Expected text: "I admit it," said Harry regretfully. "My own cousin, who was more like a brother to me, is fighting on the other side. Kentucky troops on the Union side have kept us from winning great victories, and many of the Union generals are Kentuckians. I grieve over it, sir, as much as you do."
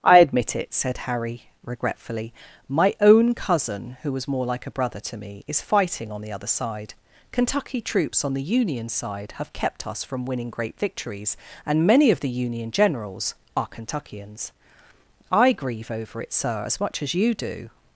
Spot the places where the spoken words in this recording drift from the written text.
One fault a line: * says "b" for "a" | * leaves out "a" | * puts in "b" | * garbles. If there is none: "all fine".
all fine